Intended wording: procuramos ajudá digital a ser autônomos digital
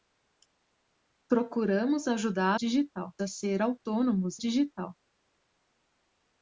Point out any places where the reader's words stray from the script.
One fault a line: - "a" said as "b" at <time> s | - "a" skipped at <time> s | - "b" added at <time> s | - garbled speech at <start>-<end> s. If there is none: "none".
none